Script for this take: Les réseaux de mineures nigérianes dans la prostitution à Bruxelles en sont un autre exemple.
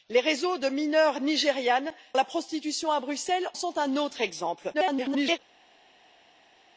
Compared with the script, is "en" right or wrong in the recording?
wrong